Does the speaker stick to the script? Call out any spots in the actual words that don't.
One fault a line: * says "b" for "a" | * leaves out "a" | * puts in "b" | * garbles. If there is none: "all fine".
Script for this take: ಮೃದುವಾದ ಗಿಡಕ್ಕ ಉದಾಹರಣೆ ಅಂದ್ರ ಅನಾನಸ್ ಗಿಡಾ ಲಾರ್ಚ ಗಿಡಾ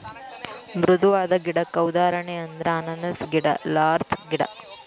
all fine